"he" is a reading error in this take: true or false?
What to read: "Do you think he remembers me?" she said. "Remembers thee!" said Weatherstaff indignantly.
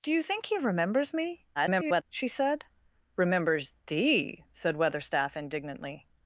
false